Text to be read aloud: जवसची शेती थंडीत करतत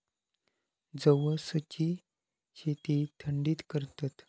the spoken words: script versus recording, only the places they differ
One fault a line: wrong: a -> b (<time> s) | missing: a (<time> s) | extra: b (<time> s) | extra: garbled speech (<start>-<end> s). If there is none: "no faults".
no faults